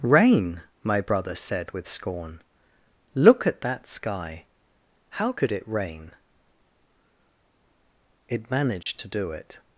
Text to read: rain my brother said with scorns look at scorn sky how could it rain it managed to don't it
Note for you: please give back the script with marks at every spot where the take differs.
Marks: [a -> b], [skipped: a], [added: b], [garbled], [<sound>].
rain my brother said with [scorns -> scorn] look at [scorn -> that] sky how could it rain it managed [dropout] to [don't -> do] it